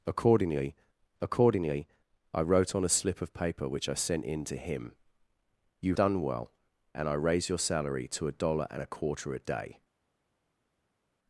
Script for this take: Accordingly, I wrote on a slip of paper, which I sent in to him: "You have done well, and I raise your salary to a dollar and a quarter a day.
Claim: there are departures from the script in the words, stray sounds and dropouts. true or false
true